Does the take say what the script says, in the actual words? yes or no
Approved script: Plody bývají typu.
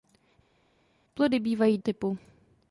yes